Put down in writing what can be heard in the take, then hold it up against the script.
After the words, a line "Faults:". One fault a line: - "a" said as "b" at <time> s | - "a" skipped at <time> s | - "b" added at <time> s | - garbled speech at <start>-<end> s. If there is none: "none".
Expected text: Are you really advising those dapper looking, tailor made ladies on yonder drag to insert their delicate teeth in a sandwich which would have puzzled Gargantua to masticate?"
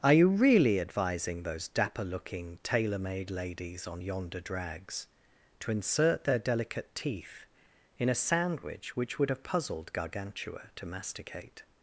Are you really advising those dapper looking, tailor made ladies on yonder drags to insert their delicate teeth in a sandwich which would have puzzled Gargantua to masticate?"
Faults:
- "drag" said as "drags" at 4.4 s